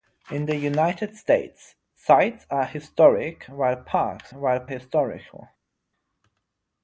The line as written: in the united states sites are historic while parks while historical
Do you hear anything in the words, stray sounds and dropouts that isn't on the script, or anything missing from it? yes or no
no